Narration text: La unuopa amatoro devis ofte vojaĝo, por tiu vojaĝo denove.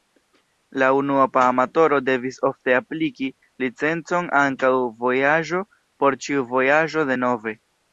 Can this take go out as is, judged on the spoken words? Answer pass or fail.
fail